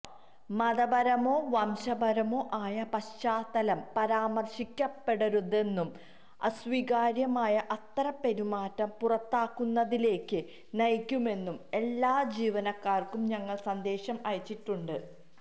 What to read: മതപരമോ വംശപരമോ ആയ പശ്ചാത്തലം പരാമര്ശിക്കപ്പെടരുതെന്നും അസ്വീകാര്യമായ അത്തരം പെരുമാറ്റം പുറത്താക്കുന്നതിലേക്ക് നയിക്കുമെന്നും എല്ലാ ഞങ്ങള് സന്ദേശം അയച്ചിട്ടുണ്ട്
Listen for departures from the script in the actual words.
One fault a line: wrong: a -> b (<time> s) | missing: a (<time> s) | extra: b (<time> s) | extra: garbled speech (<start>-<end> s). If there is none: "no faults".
extra: ജീവനക്കാര്ക്കും (12.4 s)